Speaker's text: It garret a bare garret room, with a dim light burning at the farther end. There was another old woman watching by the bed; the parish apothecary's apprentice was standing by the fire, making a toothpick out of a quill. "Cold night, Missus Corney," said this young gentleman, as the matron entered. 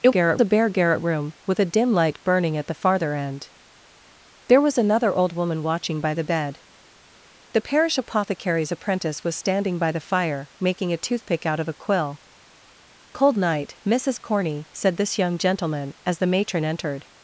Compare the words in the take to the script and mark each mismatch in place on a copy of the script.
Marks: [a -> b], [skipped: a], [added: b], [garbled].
It garret a bare garret room, with a dim light burning at the farther end. There was another old woman watching by the bed; the parish apothecary's apprentice was standing by the fire, making a toothpick out of a quill. "Cold night, Missus Corney," said this young gentleman, as the matron entered.